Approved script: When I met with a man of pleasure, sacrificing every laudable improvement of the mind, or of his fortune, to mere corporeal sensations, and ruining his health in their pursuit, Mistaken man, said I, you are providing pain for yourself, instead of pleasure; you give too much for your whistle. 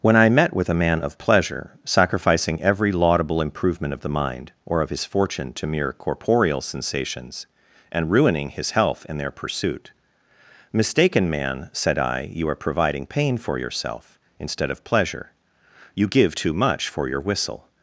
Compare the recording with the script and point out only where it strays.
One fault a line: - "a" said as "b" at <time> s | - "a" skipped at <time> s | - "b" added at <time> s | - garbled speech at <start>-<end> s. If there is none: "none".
none